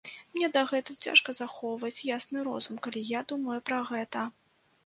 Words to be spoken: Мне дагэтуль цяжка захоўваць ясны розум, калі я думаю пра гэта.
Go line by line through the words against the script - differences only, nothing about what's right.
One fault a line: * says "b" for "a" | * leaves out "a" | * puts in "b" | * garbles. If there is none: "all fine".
all fine